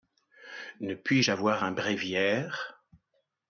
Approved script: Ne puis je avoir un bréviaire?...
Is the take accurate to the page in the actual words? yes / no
yes